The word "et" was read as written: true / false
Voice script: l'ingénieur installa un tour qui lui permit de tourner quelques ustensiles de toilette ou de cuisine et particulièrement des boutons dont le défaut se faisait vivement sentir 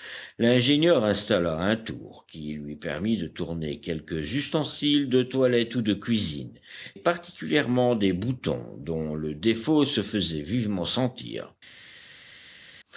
false